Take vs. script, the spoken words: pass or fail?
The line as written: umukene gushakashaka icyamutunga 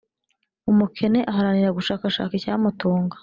fail